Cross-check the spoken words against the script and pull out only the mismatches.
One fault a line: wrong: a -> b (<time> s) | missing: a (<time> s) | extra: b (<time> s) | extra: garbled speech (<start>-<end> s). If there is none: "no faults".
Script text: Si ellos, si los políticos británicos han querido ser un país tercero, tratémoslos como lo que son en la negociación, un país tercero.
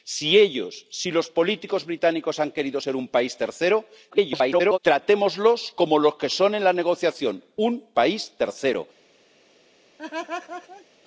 extra: garbled speech (4.1-4.8 s)